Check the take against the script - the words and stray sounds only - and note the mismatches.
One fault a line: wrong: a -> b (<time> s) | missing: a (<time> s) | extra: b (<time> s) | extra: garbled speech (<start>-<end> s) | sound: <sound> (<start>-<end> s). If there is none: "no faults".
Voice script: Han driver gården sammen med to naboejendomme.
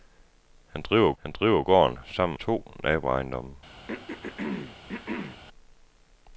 extra: han driver (1.2 s)
missing: med (2.4 s)
sound: throat clearing (3.9-5.4 s)